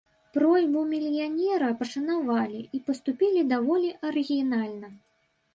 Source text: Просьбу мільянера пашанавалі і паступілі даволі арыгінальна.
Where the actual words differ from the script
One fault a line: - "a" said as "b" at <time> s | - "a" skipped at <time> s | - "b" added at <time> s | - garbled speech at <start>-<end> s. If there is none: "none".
none